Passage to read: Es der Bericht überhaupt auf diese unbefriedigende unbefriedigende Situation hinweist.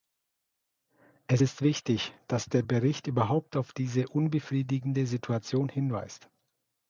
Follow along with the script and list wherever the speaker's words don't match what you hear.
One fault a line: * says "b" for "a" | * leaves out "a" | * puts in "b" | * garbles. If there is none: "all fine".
* puts in "ist wichtig dass"
* leaves out "unbefriedigende"